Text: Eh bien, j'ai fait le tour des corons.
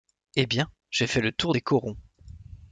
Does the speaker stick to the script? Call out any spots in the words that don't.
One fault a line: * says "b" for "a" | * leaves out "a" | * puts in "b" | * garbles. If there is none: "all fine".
all fine